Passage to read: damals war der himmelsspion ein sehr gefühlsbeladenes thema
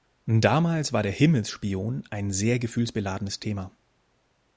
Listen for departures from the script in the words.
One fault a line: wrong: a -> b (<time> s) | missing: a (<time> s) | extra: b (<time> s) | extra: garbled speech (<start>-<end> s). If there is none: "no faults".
no faults